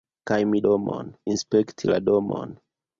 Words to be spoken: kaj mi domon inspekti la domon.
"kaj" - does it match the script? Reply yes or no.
yes